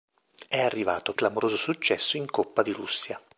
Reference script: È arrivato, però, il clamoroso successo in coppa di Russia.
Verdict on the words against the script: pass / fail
fail